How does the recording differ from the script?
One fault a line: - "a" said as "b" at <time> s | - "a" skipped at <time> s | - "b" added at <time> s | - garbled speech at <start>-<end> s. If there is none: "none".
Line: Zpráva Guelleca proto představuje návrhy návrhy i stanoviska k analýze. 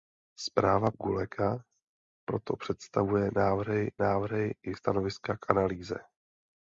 none